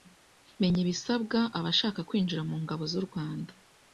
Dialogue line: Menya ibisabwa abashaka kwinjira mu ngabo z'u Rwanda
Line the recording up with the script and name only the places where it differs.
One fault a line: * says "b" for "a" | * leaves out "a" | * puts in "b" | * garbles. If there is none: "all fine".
all fine